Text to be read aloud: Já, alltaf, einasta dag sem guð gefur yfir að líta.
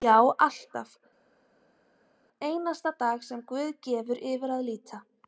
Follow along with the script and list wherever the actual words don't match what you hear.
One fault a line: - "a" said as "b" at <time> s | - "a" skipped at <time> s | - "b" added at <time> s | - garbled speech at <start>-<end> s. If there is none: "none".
none